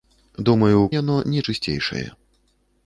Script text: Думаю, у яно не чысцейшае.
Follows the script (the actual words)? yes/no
yes